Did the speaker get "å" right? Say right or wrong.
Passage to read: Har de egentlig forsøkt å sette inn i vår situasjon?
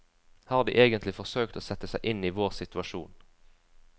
right